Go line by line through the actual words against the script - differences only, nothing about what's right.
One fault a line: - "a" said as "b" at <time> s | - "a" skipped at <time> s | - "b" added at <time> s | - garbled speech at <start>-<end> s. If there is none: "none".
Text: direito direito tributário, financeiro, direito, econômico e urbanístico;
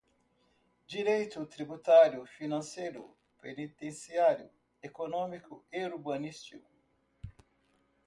- "direito" skipped at 1.4 s
- "direito" said as "penitenciário" at 3.4 s